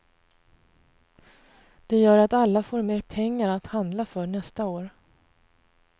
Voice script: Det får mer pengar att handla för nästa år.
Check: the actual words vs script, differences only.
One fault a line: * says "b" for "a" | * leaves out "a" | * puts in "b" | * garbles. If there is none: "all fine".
* puts in "gör att alla"